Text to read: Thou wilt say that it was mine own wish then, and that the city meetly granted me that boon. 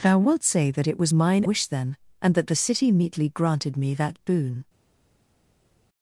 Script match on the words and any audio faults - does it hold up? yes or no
no